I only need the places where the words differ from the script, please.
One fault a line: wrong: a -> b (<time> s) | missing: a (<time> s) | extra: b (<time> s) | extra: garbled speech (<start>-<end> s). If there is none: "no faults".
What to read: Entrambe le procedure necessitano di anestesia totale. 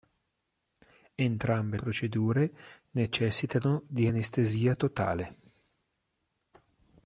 missing: le (1.8 s)